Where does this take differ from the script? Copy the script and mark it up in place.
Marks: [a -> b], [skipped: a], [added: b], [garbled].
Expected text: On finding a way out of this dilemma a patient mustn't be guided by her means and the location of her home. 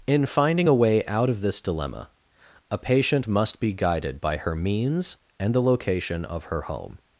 [On -> In] finding a way out of this dilemma a patient [mustn't -> must] be guided by her means and the location of her home.